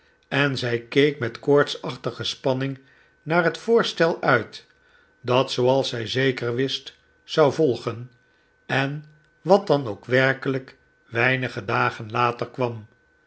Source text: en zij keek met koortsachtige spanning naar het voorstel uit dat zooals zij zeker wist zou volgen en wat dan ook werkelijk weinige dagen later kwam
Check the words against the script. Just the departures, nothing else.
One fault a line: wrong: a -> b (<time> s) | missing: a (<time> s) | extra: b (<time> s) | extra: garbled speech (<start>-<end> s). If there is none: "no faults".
no faults